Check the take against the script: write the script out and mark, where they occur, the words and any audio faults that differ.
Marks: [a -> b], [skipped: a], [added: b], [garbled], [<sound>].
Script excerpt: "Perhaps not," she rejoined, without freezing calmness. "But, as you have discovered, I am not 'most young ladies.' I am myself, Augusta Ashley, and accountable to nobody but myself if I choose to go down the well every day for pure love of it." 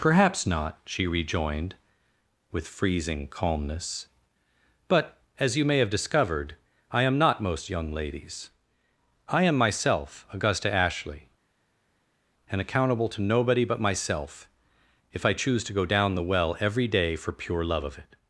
"Perhaps not," she rejoined, [without -> with] freezing calmness. "But, as you [added: may] have discovered, I am not 'most young ladies.' I am myself, Augusta Ashley, and accountable to nobody but myself if I choose to go down the well every day for pure love of it."